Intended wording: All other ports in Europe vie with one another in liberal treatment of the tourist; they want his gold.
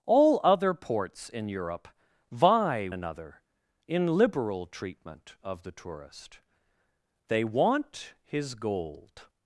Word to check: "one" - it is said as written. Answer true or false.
false